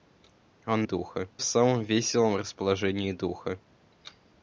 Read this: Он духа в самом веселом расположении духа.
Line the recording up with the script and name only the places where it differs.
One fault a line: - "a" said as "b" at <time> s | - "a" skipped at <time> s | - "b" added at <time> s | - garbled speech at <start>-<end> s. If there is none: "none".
none